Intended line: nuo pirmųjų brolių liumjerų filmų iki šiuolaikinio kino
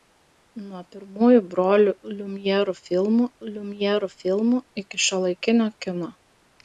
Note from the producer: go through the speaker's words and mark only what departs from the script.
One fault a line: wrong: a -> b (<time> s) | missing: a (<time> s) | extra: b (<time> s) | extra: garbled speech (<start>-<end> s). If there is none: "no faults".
extra: liumjerų filmų (3.5 s)